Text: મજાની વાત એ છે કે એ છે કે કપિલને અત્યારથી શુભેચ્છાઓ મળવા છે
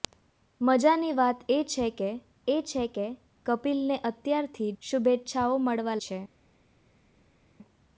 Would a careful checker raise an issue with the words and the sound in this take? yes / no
no